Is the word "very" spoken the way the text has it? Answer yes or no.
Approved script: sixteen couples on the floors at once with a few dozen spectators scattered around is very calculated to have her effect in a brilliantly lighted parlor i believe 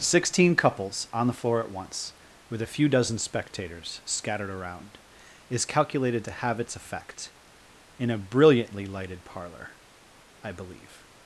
no